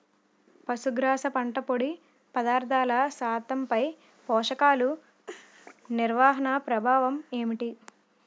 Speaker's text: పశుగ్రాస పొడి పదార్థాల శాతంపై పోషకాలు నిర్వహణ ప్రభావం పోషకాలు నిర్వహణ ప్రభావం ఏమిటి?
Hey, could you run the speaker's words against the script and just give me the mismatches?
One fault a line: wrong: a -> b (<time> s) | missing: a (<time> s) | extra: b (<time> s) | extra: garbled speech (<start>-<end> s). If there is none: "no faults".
extra: పంట (1.3 s)
missing: పోషకాలు నిర్వహణ ప్రభావం (7.2 s)